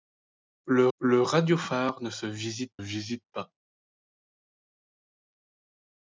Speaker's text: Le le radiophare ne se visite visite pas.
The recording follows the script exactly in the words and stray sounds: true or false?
true